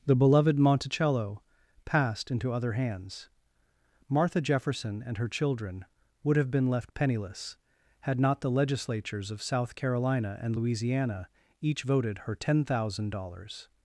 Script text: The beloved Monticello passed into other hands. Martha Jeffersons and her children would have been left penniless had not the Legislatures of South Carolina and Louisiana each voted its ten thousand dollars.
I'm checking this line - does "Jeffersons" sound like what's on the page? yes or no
no